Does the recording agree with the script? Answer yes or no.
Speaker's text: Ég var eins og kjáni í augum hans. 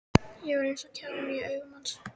yes